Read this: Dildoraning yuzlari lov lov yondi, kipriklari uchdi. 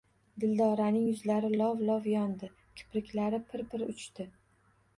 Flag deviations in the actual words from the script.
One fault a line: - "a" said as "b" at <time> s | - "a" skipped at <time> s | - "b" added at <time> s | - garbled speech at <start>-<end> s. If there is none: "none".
- "pir pir" added at 3.5 s